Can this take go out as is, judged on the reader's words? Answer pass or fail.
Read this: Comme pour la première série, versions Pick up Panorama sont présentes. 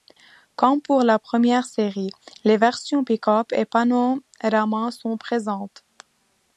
fail